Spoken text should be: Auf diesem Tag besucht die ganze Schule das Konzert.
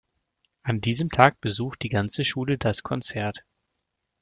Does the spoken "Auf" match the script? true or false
false